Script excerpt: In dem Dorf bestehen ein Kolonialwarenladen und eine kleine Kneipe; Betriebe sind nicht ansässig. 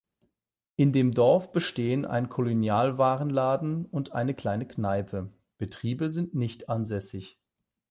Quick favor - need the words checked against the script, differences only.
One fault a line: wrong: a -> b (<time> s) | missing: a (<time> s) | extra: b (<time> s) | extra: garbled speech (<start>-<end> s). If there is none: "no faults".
no faults